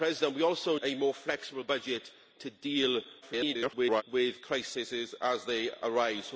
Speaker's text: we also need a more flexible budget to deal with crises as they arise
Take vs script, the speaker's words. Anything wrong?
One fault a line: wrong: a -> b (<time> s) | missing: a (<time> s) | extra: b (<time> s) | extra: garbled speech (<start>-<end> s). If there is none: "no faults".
missing: need (0.8 s)
extra: garbled speech (3.2-4.0 s)